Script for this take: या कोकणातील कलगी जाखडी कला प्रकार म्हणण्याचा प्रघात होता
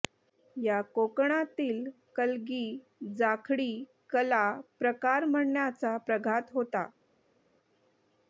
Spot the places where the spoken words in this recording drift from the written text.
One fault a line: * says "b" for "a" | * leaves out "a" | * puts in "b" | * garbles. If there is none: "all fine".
all fine